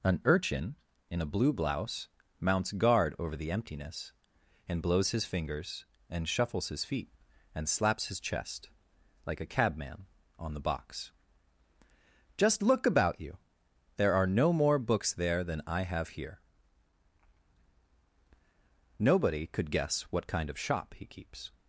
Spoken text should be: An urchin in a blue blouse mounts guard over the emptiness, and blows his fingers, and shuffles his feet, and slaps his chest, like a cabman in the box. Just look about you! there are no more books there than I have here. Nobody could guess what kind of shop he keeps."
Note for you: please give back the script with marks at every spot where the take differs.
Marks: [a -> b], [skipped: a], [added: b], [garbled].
An urchin in a blue blouse mounts guard over the emptiness, and blows his fingers, and shuffles his feet, and slaps his chest, like a cabman [in -> on] the box. Just look about you! there are no more books there than I have here. Nobody could guess what kind of shop he keeps."